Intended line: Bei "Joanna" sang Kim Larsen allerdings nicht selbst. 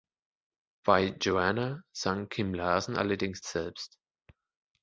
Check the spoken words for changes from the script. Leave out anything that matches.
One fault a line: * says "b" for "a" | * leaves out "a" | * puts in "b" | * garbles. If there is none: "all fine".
* leaves out "nicht"